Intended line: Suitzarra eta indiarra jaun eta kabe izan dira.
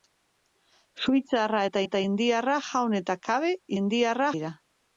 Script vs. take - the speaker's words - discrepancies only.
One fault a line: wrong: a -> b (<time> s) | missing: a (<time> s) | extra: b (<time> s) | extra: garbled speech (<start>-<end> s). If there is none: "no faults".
extra: eta (1.9 s)
wrong: izan -> indiarra (3.8 s)